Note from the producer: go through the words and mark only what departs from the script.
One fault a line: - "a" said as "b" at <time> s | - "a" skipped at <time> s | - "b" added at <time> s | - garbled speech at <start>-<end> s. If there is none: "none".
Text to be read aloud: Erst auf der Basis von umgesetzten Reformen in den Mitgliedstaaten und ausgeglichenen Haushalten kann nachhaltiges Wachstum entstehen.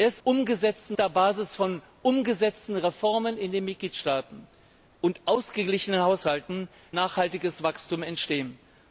- "auf" said as "umgesetzten" at 0.2 s
- "kann" skipped at 6.7 s